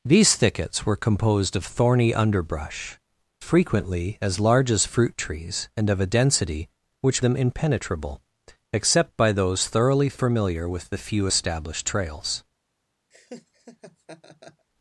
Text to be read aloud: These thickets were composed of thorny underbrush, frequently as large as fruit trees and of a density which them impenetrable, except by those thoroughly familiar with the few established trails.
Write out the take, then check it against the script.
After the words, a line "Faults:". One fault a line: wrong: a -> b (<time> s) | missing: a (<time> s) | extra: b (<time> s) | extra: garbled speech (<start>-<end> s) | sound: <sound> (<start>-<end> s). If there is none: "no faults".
These thickets were composed of thorny underbrush, frequently as large as fruit trees and of a density which them impenetrable, except by those thoroughly familiar with the few established trails.
Faults:
sound: laugh (13.1-14.7 s)